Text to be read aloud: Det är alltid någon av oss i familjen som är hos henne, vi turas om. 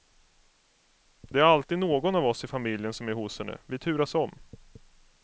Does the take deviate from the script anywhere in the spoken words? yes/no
no